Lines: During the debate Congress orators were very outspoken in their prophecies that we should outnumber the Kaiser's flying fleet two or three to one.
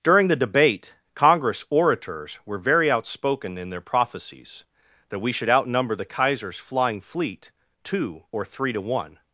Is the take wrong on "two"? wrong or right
right